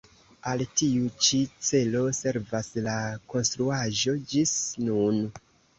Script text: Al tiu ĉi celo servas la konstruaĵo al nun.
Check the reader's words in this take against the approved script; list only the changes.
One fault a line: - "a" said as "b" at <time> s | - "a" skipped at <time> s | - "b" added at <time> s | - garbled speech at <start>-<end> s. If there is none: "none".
- "al" said as "ĝis" at 4.3 s